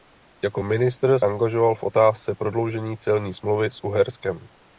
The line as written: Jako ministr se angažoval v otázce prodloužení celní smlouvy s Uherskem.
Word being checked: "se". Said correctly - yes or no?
no